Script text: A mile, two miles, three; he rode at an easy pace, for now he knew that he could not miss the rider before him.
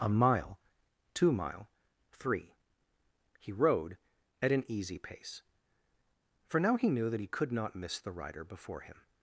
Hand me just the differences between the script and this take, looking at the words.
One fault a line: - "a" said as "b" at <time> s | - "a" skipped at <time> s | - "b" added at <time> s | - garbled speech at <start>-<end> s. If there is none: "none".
- "miles" said as "mile" at 1.3 s